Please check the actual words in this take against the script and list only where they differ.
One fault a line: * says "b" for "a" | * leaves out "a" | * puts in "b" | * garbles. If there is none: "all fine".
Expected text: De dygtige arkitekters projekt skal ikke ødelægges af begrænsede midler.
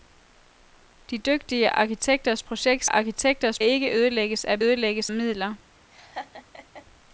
* says "arkitekters" for "skal"
* says "ødelægges" for "begrænsede"